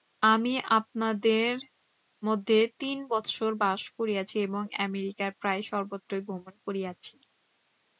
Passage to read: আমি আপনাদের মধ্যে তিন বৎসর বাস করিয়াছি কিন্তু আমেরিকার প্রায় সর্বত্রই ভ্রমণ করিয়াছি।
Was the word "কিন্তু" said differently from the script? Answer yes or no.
yes